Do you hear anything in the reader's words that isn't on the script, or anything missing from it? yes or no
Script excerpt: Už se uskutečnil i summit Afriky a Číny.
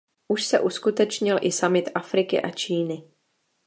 no